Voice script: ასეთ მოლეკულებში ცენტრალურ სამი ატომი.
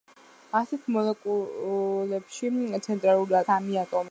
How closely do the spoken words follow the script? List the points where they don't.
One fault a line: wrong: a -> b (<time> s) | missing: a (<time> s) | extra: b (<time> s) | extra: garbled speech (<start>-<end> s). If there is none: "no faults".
no faults